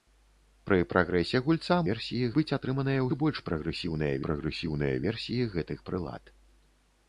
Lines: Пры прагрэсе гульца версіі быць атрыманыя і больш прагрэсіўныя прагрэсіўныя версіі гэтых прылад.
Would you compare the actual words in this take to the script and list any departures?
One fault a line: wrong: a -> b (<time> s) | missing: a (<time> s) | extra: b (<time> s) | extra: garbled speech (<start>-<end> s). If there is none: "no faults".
no faults